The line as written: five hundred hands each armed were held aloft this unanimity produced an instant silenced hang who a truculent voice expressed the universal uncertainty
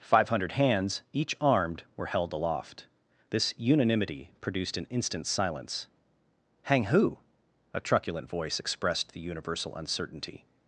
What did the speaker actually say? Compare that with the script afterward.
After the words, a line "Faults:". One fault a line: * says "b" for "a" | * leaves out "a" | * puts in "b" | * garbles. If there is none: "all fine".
five hundred hands each armed were held aloft this unanimity produced an instant silence hang who a truculent voice expressed the universal uncertainty
Faults:
* says "silence" for "silenced"